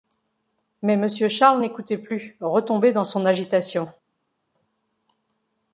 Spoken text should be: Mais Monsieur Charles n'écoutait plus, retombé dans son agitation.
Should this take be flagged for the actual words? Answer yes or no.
no